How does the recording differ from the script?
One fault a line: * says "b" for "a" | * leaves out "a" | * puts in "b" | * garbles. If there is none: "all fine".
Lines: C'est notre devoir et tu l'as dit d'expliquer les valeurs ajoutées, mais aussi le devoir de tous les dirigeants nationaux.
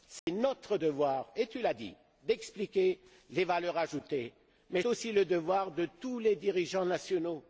all fine